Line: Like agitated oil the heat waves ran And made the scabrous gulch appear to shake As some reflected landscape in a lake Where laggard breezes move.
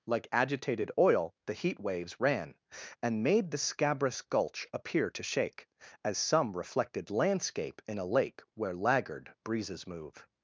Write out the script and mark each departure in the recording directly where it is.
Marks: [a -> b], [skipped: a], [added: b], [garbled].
Like agitated oil the heat waves ran And made the scabrous gulch appear to shake As some reflected landscape in a lake Where laggard breezes move.